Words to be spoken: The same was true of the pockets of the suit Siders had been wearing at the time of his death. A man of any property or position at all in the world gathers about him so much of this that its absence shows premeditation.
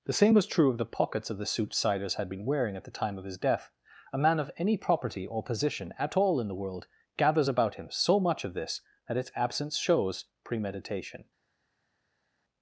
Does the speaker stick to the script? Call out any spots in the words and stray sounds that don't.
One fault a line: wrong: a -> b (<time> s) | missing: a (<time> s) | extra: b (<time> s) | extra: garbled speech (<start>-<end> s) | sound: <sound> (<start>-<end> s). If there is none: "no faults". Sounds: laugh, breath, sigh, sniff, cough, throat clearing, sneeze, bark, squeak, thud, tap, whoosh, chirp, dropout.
no faults